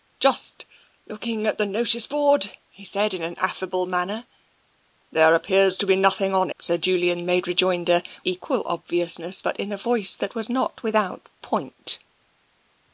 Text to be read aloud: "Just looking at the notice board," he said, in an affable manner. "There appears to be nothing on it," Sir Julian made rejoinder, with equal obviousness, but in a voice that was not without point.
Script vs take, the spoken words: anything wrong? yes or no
yes